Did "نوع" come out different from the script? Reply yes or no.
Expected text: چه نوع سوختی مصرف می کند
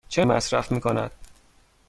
yes